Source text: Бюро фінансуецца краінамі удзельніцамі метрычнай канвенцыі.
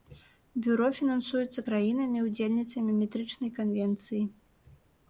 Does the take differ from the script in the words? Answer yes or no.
no